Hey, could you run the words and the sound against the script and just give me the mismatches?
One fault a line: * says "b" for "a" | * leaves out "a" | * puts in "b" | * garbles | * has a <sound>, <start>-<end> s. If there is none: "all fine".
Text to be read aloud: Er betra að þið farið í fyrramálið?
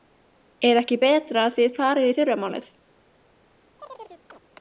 * puts in "ekki"
* has a chirp, 3.8-4.4 s